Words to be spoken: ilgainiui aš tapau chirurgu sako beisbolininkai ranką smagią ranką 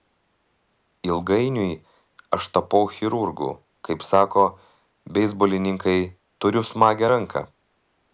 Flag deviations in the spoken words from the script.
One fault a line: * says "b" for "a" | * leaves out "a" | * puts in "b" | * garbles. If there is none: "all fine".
* puts in "kaip"
* says "turiu" for "ranką"